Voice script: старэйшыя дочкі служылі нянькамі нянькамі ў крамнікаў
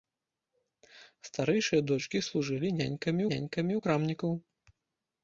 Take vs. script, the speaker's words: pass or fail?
pass